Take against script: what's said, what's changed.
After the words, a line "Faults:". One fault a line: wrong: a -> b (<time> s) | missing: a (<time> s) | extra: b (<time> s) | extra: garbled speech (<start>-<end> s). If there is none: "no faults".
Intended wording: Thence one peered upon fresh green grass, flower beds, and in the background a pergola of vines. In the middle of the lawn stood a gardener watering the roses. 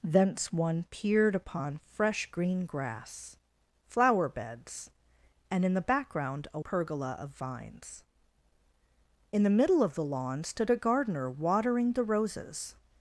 Thence one peered upon fresh green grass, flower beds, and in the background a pergola of vines. In the middle of the lawn stood a gardener watering the roses.
Faults:
no faults